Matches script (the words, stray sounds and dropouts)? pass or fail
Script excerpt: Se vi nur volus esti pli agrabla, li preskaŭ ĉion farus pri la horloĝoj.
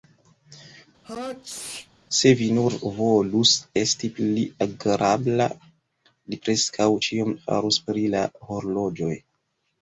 fail